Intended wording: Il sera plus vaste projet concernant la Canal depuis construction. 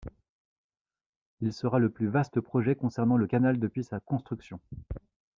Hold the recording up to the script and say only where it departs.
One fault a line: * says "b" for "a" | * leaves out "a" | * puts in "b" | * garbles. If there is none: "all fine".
* puts in "le"
* says "le" for "la"
* puts in "sa"